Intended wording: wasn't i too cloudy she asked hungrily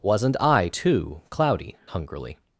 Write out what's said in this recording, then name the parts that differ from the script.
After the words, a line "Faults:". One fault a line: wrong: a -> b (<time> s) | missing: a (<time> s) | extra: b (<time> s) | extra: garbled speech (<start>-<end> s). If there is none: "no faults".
wasn't i too cloudy hungrily
Faults:
missing: she asked (1.8 s)